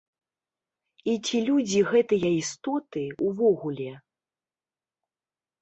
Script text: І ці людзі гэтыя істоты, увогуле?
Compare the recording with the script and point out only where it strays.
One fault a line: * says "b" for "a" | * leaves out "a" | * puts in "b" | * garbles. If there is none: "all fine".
all fine